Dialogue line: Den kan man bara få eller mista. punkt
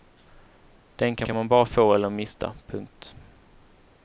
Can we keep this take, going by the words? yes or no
no